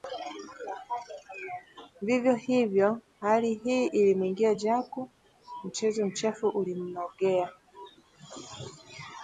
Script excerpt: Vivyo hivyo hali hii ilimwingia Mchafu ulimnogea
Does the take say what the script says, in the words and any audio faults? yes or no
no